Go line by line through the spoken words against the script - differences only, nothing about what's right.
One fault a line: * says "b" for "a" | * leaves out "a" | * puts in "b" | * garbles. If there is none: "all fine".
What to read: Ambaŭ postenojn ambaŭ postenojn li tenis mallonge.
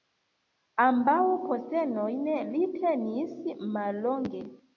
* leaves out "ambaŭ postenojn"